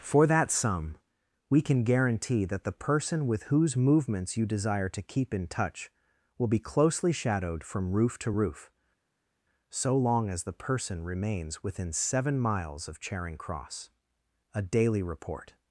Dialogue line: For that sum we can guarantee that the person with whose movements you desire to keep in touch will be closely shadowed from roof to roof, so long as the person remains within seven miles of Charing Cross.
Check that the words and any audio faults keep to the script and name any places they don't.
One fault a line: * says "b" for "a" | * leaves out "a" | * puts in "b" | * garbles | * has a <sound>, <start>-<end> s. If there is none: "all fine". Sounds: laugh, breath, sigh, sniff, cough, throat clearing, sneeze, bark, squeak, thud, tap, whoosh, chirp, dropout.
* puts in "A daily report"